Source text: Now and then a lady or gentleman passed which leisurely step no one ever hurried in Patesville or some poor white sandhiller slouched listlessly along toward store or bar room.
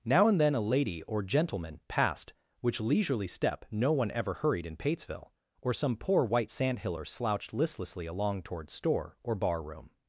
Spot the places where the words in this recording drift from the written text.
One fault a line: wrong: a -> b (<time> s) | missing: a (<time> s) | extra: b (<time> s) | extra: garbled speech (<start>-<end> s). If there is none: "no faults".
no faults